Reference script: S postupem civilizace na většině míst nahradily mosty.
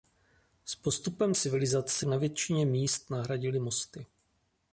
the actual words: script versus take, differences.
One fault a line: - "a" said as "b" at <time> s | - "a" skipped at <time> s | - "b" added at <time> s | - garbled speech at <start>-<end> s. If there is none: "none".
none